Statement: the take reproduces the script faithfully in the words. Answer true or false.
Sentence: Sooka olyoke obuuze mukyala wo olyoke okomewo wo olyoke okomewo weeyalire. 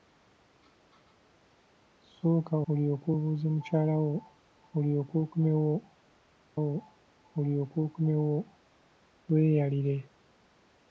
true